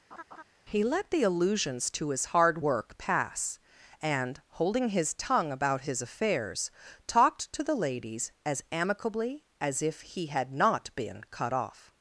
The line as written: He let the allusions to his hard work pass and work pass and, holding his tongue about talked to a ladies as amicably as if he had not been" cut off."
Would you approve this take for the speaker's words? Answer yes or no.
no